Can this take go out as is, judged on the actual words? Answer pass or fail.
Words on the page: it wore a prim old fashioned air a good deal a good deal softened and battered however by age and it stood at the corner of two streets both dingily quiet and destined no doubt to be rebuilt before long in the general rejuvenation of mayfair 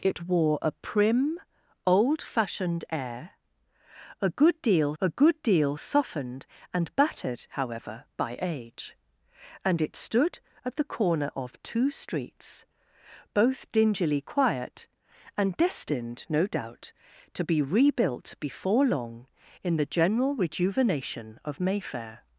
pass